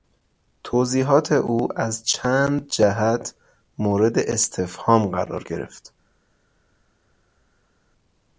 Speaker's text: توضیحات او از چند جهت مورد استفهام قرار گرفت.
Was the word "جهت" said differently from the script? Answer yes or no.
no